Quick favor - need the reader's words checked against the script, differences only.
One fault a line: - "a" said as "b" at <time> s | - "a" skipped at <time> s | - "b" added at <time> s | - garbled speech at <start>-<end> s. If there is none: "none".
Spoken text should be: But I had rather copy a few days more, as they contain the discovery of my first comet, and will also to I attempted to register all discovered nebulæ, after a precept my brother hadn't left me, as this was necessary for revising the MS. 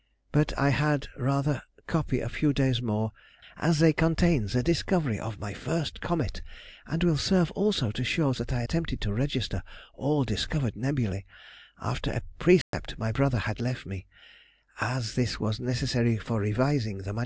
- "serve" added at 7.2 s
- "show that" added at 8.0 s
- "hadn't" said as "had" at 13.4 s